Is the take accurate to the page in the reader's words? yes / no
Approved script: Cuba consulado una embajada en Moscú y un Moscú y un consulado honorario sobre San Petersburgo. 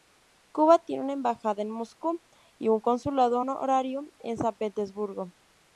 no